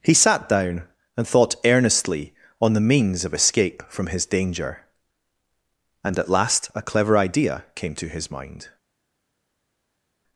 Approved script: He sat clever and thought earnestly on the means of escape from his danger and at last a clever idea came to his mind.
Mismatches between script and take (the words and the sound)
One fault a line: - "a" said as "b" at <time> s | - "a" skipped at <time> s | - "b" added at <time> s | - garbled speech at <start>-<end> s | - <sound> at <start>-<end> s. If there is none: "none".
- "clever" said as "down" at 0.5 s